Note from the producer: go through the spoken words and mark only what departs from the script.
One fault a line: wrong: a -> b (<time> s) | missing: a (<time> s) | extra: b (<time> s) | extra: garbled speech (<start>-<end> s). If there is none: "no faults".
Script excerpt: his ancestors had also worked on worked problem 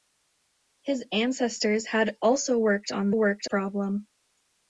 no faults